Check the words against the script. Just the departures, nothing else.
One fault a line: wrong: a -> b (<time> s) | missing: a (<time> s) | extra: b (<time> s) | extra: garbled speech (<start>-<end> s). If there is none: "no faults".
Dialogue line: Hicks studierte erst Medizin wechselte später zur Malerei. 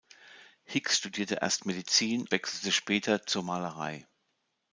no faults